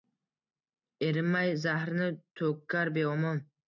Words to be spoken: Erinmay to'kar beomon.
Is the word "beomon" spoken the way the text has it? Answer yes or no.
yes